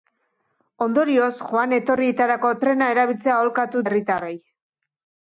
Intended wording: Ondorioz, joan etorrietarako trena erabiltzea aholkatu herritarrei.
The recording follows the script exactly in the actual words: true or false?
true